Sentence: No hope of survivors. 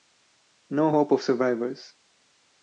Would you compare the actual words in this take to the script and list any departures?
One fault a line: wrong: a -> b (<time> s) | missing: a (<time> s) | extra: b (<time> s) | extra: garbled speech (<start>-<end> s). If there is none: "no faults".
no faults